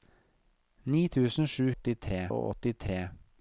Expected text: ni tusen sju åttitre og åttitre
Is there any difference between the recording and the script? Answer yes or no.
no